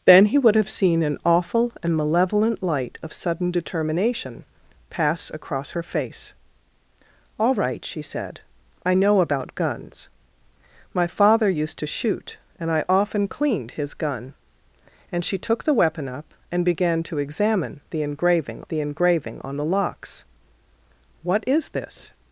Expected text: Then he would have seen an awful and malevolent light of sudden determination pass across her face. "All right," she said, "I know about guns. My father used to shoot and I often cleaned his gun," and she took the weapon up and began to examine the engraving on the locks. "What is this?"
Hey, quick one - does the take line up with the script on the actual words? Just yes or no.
no